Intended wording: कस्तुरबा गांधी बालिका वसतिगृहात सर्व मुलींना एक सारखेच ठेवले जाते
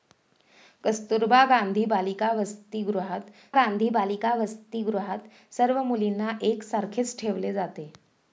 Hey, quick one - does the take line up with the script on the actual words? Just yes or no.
no